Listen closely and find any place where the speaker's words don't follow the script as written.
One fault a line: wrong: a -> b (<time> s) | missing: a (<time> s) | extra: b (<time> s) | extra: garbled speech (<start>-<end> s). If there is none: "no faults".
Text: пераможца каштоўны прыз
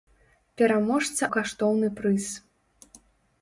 no faults